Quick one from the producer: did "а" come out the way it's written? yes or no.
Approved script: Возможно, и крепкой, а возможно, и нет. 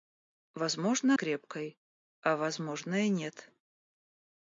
yes